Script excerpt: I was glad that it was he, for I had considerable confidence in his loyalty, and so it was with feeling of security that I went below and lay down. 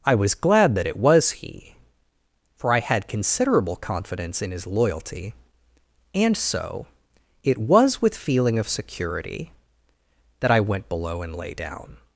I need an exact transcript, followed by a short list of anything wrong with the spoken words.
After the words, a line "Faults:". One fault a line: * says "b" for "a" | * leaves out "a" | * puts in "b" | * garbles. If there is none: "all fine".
I was glad that it was he, for I had considerable confidence in his loyalty, and so it was with feeling of security that I went below and lay down.
Faults:
all fine